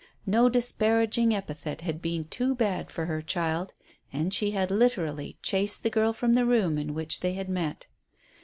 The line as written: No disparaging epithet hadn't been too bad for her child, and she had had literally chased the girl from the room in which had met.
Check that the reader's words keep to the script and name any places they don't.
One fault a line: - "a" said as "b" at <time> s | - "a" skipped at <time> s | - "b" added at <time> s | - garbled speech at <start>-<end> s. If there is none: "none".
- "hadn't" said as "had" at 1.8 s
- "had" skipped at 4.7 s
- "they" added at 7.2 s